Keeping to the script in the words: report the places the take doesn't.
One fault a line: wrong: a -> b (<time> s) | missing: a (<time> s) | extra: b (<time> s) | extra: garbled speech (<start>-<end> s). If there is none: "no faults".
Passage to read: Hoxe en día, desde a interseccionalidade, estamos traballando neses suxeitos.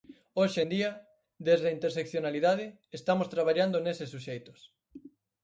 no faults